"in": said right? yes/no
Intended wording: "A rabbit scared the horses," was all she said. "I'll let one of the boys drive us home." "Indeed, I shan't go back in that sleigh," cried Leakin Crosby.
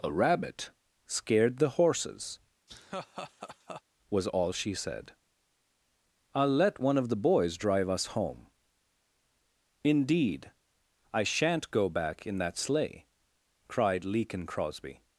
yes